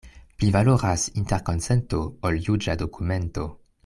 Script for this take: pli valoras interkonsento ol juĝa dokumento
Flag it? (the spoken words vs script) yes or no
no